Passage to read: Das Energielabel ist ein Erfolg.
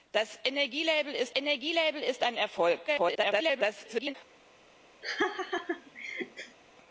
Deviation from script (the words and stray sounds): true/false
true